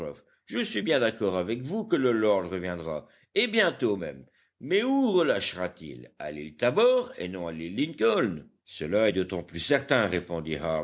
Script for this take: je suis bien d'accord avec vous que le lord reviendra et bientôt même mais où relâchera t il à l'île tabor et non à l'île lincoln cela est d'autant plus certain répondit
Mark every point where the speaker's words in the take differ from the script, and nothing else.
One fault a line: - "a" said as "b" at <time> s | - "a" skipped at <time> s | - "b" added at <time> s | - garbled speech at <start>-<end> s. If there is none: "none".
none